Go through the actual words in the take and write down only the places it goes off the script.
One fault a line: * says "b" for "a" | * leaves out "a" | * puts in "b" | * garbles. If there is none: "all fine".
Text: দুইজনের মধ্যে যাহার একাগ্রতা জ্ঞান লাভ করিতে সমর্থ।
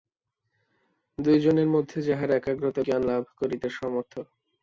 all fine